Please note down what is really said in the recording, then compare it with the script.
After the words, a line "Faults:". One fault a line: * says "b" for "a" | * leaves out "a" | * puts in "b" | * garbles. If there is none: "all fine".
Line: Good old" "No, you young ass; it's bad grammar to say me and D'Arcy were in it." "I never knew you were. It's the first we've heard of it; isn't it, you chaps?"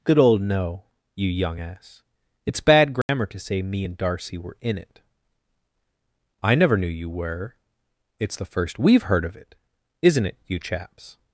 Good old" "No, you young ass; it's bad grammar to say me and D'Arcy were in it." "I never knew you were. It's the first we've heard of it; isn't it, you chaps?"
Faults:
all fine